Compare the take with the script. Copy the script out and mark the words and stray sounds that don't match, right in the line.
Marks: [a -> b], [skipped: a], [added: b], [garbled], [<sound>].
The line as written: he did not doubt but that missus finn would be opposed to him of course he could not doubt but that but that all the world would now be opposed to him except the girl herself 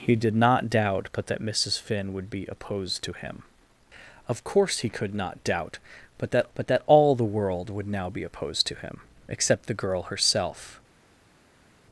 he did not doubt but that missus finn would be opposed to him of course he could not doubt but that but that all the world would now be opposed to him except the girl herself